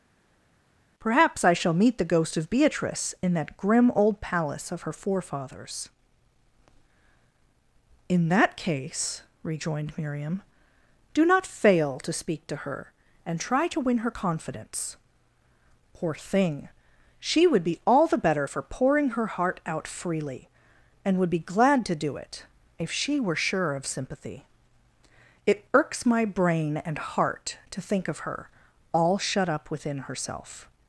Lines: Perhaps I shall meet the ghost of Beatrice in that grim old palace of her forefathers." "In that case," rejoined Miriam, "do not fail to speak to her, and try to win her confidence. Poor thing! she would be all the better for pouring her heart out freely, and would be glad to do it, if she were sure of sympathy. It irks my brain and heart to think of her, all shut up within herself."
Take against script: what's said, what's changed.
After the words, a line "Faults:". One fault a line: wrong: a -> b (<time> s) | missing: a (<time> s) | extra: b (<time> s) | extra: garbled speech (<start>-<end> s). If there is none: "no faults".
Perhaps I shall meet the ghost of Beatrice in that grim old palace of her forefathers." "In that case," rejoined Miriam, "do not fail to speak to her, and try to win her confidence. Poor thing! she would be all the better for pouring her heart out freely, and would be glad to do it, if she were sure of sympathy. It irks my brain and heart to think of her, all shut up within herself."
Faults:
no faults